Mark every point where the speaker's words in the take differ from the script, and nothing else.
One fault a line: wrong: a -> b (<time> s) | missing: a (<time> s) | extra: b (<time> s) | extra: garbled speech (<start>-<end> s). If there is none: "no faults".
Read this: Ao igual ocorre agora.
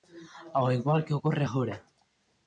extra: que (1.1 s)